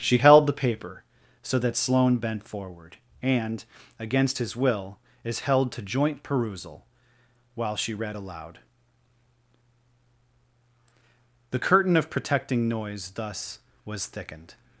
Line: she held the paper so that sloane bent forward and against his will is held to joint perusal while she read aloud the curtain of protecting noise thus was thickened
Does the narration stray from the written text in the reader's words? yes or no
no